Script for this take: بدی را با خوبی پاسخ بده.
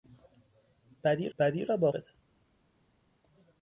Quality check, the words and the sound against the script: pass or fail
fail